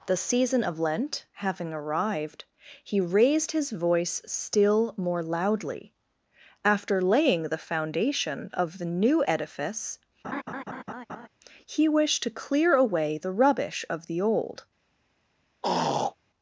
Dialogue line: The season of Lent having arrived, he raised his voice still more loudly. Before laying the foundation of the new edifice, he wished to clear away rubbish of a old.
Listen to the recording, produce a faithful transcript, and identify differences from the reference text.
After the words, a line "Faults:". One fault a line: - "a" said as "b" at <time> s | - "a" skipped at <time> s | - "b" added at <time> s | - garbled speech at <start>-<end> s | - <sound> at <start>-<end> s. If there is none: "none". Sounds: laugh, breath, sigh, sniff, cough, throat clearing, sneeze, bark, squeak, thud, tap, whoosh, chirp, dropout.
The season of Lent having arrived, he raised his voice still more loudly. After laying the foundation of the new edifice, he wished to clear away the rubbish of the old.
Faults:
- "Before" said as "After" at 6.7 s
- laugh at 10.2-11.3 s
- "the" added at 13.2 s
- "a" said as "the" at 14.1 s
- throat clearing at 15.6-16.2 s